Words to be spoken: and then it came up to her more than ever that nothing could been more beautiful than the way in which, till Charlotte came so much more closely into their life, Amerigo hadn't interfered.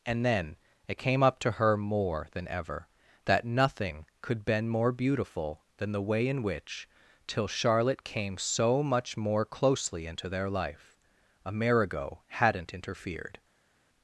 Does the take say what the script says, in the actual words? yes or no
yes